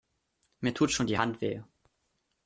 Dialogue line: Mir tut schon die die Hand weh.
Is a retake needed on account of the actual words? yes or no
yes